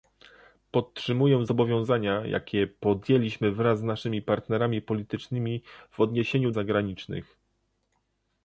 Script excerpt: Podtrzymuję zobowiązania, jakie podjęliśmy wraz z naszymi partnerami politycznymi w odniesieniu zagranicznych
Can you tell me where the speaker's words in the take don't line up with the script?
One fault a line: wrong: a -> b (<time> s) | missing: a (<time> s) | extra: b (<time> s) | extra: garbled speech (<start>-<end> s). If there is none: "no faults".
no faults